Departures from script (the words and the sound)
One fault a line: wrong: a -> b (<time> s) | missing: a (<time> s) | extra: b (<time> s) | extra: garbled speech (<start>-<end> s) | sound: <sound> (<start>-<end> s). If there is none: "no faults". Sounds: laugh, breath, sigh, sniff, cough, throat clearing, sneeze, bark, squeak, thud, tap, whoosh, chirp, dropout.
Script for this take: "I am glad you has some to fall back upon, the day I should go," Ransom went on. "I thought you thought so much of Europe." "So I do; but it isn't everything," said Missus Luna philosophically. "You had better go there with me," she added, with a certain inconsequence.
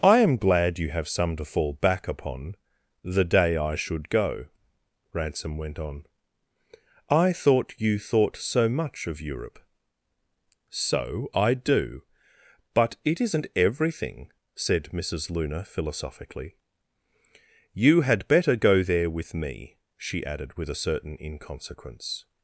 wrong: has -> have (0.9 s)